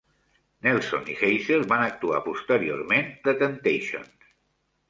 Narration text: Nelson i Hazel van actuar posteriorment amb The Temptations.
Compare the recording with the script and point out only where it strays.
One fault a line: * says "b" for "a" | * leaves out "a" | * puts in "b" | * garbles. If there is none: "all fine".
* leaves out "amb"